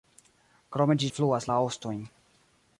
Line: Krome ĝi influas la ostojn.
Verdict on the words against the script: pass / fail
pass